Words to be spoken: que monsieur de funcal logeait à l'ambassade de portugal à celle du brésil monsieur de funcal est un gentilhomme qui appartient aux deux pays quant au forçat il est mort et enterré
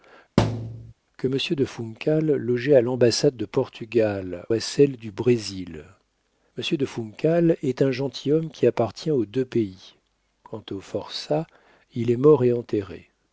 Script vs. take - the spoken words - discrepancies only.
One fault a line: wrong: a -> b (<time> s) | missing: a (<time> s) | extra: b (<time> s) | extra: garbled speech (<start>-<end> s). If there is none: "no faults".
no faults